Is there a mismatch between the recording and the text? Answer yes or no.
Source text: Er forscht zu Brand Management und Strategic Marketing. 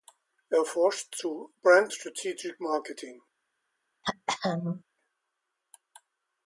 yes